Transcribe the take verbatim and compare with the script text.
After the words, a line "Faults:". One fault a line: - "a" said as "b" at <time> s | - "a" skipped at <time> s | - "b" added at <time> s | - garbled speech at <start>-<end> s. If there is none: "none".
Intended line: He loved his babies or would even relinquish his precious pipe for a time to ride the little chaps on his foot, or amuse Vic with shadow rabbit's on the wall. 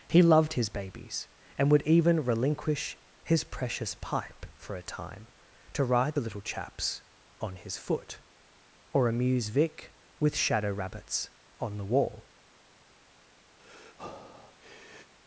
He loved his babies and would even relinquish his precious pipe for a time to ride the little chaps on his foot, or amuse Vic with shadow rabbit's on the wall.
Faults:
- "or" said as "and" at 1.6 s